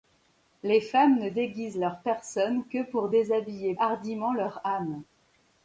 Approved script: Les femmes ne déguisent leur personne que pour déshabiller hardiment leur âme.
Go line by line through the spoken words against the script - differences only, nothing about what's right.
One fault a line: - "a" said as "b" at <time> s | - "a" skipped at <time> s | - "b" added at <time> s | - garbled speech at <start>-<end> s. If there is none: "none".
none